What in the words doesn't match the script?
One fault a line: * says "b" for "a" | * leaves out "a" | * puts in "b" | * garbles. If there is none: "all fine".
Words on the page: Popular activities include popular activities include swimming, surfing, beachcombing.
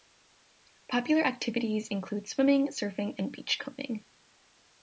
* leaves out "popular activities include"
* puts in "and"